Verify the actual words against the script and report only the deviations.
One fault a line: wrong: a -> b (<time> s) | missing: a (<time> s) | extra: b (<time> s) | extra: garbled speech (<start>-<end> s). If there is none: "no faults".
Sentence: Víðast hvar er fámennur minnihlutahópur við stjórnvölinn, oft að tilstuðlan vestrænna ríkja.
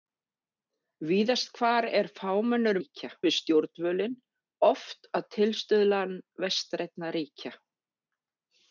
wrong: minnihlutahópur -> ríkja (2.8 s)